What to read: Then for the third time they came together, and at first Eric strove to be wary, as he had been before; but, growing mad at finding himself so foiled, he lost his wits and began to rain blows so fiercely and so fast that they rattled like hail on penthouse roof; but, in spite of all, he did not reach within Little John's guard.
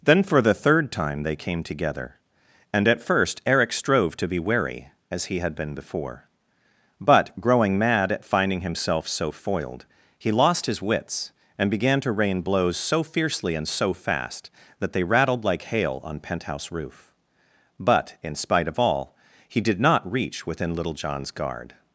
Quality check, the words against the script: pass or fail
pass